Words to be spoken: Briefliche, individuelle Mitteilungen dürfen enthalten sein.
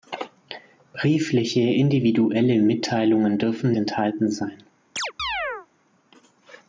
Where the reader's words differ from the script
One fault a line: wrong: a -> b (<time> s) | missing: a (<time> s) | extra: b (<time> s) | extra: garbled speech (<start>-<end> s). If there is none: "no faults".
no faults